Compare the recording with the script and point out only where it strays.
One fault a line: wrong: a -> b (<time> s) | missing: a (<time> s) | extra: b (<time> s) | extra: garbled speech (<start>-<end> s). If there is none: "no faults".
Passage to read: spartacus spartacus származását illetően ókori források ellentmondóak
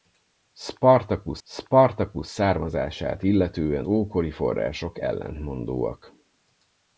no faults